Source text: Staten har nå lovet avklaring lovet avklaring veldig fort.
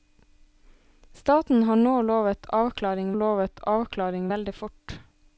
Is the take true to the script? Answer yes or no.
yes